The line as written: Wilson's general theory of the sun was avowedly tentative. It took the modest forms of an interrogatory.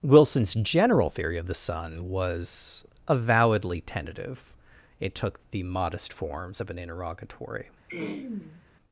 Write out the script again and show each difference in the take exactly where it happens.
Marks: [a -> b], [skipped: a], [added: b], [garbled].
Wilson's general theory of the sun was avowedly tentative. It took the modest forms of an interrogatory.